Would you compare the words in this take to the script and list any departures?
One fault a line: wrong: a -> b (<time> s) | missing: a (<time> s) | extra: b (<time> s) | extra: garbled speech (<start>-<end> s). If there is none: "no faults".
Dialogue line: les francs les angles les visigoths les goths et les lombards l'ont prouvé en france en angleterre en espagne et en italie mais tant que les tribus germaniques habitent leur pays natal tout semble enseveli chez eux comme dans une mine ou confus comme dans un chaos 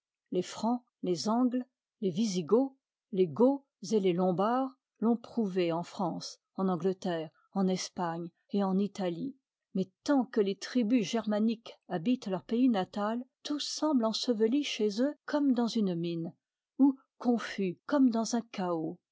no faults